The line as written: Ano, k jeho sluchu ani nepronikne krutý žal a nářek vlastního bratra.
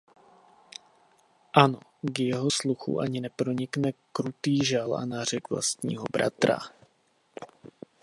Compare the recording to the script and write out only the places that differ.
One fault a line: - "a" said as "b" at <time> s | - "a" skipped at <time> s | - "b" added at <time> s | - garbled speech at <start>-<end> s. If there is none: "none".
none